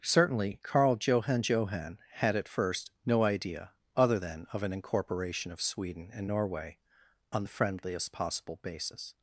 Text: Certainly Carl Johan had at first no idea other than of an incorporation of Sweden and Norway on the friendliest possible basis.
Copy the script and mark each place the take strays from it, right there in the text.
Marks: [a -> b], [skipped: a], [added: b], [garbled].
Certainly Carl Johan [added: Johan] had at first no idea other than of an incorporation of Sweden and Norway on the friendliest possible basis.